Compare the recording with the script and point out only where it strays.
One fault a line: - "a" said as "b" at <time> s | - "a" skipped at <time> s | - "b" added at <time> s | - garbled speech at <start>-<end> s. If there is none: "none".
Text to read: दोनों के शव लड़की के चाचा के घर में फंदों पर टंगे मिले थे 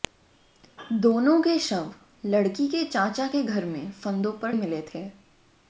- "टंगे" skipped at 4.5 s